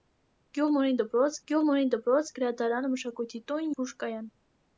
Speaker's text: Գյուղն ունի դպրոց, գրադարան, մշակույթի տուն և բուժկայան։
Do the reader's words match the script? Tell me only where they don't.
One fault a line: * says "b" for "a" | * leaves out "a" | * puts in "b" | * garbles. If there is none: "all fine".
* puts in "գյուղն ունի դպրոց"
* leaves out "և"